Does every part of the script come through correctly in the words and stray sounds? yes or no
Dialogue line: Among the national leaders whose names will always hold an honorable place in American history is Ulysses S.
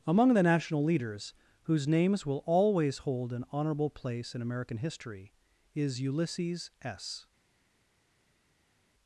yes